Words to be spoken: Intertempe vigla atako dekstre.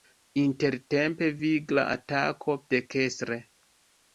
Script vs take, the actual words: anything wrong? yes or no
no